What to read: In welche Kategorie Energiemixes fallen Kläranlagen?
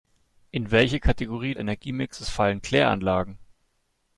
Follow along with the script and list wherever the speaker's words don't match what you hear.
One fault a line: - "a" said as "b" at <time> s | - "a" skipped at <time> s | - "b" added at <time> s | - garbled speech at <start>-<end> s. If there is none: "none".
none